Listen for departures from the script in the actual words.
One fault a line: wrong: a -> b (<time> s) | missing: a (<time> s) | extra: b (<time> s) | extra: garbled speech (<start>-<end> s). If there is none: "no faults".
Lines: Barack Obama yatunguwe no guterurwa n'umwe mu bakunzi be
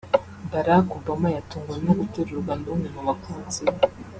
no faults